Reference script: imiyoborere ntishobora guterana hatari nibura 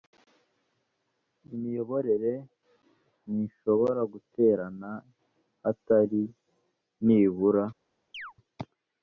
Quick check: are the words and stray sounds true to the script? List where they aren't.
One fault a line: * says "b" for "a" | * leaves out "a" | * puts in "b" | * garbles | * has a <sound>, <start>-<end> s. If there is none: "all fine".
* has a chirp, 8.1-8.3 s